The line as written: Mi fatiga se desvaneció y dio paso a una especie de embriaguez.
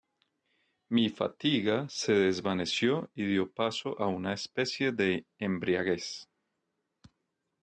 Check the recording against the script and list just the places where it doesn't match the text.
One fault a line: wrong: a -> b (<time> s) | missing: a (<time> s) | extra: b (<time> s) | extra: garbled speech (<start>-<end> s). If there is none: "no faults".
no faults